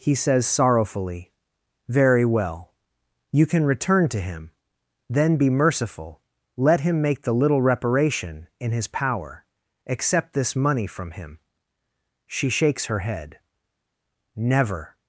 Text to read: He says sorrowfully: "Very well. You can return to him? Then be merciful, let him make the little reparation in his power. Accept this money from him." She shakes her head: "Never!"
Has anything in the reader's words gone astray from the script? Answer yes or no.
no